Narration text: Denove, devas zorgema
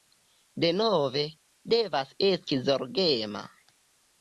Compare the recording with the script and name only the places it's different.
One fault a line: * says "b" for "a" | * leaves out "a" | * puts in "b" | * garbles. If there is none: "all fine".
* puts in "esti"